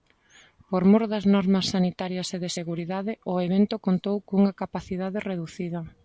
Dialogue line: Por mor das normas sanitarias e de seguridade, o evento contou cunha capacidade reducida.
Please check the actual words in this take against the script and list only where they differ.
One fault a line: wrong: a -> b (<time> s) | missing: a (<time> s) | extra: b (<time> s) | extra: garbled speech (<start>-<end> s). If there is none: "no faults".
no faults